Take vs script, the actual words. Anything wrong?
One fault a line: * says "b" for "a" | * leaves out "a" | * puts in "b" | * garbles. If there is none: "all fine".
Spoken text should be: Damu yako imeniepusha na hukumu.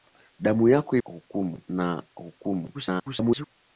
* says "hukumu" for "imeniepusha"
* garbles